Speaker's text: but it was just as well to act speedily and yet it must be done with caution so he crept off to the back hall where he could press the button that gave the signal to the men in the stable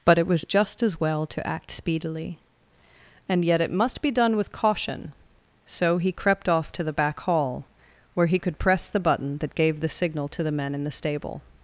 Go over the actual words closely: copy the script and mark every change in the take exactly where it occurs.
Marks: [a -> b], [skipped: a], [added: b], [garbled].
but it was just as well to act speedily and yet it must be done with caution so he crept off to the back hall where he could press the button that gave the signal to the men in the stable